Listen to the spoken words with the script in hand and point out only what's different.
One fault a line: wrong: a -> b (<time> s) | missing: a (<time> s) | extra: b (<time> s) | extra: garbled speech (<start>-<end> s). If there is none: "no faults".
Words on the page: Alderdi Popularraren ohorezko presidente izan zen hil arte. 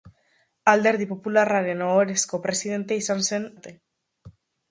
missing: hil (3.5 s)